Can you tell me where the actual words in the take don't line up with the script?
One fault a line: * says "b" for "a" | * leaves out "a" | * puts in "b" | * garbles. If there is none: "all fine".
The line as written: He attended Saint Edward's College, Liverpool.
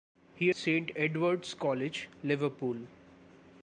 * leaves out "attended"